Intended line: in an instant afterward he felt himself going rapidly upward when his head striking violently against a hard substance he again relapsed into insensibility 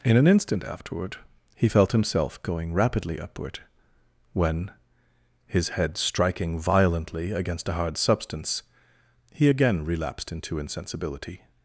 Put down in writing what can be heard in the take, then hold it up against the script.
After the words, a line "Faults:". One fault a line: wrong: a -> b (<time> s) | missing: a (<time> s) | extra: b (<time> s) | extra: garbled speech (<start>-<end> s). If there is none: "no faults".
in an instant afterward he felt himself going rapidly upward when his head striking violently against a hard substance he again relapsed into insensibility
Faults:
no faults